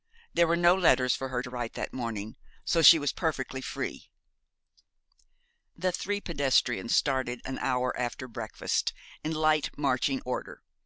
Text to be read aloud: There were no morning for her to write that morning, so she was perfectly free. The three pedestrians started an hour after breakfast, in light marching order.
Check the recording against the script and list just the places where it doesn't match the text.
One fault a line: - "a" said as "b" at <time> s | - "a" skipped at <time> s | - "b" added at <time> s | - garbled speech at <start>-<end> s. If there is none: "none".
- "morning" said as "letters" at 0.7 s